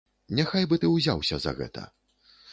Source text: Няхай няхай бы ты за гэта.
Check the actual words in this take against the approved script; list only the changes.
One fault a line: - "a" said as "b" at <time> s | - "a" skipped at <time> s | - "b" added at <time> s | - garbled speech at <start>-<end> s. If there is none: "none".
- "няхай" skipped at 0.7 s
- "ўзяўся" added at 0.9 s